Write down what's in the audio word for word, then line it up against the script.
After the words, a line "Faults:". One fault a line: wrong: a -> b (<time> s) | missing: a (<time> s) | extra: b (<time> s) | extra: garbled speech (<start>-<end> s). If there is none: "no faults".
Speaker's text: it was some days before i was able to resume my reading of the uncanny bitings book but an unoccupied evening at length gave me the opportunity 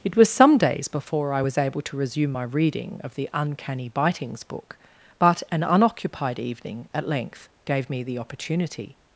it was some days before i was able to resume my reading of the uncanny bitings book but an unoccupied evening at length gave me the opportunity
Faults:
no faults